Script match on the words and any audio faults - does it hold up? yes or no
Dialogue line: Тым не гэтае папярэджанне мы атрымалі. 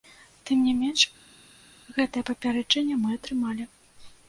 no